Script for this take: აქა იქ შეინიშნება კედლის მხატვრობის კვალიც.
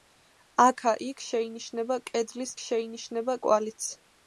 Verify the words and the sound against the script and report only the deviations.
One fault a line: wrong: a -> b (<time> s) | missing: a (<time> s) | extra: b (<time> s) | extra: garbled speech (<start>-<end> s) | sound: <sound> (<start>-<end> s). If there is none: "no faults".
wrong: მხატვრობის -> შეინიშნება (2.6 s)